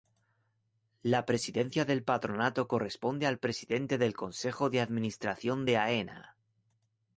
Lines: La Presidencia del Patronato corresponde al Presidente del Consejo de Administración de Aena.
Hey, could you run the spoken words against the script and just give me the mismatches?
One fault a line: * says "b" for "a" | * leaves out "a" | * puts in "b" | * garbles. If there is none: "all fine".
all fine